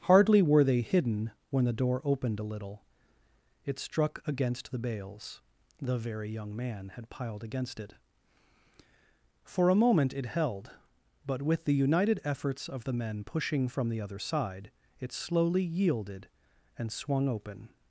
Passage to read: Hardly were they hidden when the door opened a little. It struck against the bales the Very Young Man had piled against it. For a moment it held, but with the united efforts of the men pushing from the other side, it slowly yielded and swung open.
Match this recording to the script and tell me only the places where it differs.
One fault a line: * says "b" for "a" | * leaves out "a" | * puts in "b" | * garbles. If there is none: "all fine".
all fine